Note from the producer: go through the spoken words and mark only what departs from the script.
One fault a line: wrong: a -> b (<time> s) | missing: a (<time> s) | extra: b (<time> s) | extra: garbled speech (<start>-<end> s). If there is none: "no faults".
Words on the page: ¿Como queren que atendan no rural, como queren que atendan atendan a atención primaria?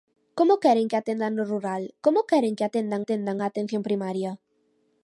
no faults